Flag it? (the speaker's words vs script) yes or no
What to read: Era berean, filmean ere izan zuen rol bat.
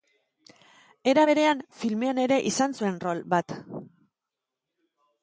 no